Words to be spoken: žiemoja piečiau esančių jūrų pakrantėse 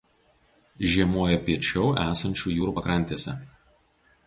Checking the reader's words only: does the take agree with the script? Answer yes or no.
yes